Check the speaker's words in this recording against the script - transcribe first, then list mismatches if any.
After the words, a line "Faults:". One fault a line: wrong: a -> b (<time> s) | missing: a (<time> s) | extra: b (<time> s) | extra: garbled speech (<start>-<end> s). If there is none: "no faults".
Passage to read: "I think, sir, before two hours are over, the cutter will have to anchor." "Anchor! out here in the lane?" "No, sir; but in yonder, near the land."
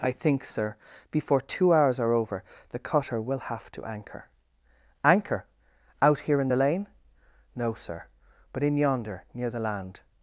"I think, sir, before two hours are over, the cutter will have to anchor." "Anchor! out here in the lane?" "No, sir; but in yonder, near the land."
Faults:
no faults